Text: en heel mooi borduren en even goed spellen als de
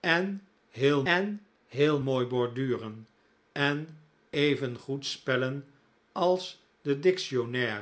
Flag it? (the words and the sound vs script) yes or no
yes